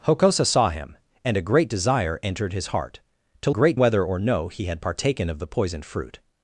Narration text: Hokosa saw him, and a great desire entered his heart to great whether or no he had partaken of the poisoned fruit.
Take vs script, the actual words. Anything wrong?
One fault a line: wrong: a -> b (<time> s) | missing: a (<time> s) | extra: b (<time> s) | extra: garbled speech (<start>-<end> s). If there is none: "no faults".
no faults